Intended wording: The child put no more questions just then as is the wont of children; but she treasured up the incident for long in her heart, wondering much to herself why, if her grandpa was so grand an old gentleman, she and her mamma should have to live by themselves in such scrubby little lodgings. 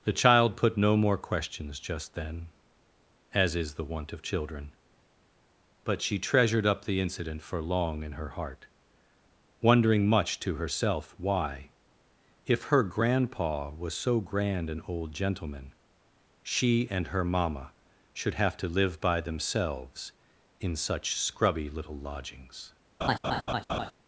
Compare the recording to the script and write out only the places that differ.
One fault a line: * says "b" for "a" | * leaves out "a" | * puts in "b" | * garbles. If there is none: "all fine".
all fine